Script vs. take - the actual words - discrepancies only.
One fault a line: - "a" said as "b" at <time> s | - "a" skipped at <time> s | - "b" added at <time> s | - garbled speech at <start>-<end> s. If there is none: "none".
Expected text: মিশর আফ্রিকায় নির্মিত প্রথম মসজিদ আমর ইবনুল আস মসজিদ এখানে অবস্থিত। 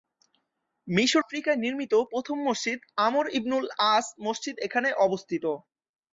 none